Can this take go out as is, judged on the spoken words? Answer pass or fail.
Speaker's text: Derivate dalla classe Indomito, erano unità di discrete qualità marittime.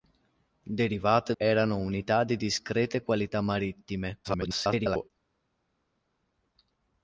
fail